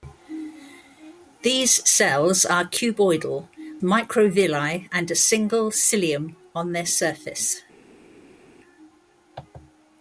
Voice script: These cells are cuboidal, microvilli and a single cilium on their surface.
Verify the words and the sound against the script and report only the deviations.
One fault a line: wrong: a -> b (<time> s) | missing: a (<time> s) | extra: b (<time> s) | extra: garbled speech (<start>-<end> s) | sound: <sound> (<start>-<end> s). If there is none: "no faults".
no faults